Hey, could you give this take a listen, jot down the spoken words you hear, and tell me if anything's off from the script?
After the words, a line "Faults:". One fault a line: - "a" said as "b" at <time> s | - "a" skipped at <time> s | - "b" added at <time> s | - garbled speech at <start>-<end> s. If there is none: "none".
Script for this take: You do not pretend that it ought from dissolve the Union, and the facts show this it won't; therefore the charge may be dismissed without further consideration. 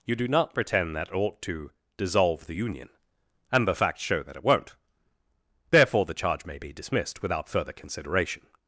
You do not pretend that it ought to dissolve the Union, and the facts show that it won't; therefore the charge may be dismissed without further consideration.
Faults:
- "from" said as "to" at 1.4 s
- "this" said as "that" at 4.2 s